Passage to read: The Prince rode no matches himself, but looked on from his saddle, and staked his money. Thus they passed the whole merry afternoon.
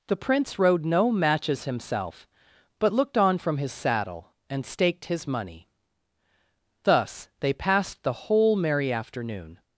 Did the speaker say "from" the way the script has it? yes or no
yes